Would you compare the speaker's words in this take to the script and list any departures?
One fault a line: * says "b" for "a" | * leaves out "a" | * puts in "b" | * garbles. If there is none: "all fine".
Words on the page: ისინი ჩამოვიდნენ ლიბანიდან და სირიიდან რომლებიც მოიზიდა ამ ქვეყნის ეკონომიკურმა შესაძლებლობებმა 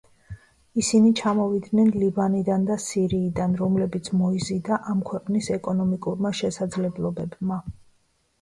all fine